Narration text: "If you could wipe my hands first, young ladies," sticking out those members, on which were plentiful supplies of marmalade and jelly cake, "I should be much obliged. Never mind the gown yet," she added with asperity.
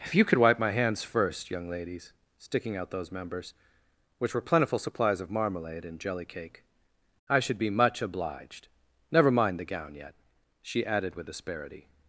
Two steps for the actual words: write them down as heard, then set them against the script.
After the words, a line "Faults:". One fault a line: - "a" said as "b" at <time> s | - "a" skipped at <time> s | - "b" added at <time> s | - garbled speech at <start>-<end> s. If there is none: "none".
"If you could wipe my hands first, young ladies," sticking out those members, which were plentiful supplies of marmalade and jelly cake, "I should be much obliged. Never mind the gown yet," she added with asperity.
Faults:
- "on" skipped at 3.5 s